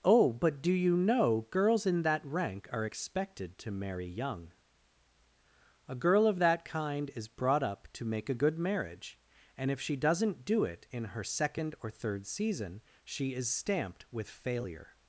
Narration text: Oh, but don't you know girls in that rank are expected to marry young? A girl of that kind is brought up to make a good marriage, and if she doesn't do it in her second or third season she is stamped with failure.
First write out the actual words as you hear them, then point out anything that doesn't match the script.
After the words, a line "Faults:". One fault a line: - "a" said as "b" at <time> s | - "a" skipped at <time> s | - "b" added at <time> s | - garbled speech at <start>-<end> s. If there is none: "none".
Oh, but do you know girls in that rank are expected to marry young? A girl of that kind is brought up to make a good marriage, and if she doesn't do it in her second or third season she is stamped with failure.
Faults:
- "don't" said as "do" at 0.6 s